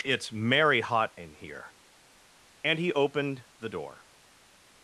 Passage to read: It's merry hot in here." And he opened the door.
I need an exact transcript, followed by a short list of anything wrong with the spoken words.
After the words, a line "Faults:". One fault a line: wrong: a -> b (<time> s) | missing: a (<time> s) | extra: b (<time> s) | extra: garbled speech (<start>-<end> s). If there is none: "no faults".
It's merry hot in here." And he opened the door.
Faults:
no faults